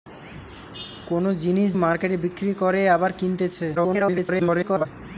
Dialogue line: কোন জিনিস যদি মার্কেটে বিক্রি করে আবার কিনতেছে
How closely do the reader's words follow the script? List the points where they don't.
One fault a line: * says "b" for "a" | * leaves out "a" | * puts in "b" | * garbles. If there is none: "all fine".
* leaves out "যদি"
* garbles